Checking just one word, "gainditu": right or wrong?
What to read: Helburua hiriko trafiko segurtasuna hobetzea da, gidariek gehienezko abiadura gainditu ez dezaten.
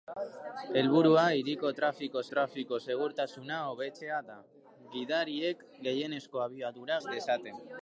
wrong